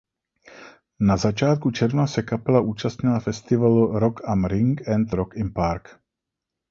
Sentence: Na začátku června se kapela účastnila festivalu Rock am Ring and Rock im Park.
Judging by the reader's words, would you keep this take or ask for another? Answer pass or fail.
pass